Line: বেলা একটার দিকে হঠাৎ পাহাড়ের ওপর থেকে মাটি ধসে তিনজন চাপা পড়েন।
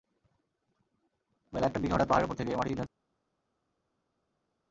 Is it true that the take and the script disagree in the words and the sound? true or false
true